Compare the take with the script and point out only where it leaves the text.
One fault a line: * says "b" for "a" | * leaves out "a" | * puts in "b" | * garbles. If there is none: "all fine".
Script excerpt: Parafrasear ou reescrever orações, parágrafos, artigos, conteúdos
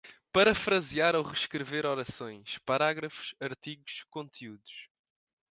all fine